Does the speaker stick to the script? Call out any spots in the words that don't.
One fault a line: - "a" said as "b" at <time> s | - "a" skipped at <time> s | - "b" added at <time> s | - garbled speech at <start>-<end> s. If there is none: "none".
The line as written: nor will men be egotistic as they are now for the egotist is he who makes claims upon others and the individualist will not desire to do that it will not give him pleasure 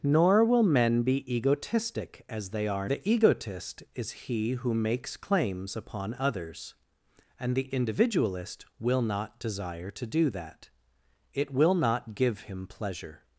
- "now for" skipped at 2.9 s